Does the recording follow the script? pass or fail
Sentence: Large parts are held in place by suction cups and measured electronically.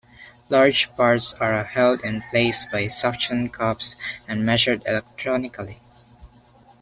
pass